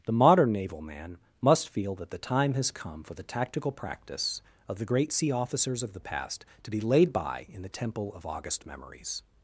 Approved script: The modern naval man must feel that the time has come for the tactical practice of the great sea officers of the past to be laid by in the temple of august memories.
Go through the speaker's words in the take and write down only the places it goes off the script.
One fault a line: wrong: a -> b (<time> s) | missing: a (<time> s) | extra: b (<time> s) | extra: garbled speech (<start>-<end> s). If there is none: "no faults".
no faults